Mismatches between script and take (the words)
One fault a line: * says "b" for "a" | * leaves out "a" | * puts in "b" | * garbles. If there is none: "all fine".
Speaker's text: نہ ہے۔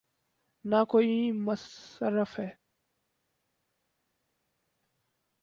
* puts in "کوئی مصرف"